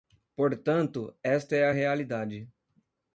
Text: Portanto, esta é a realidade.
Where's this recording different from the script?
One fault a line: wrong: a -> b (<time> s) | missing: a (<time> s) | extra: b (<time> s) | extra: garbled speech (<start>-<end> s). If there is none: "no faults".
no faults